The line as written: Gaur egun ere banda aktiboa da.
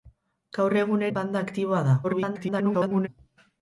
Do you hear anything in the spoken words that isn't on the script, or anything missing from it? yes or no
yes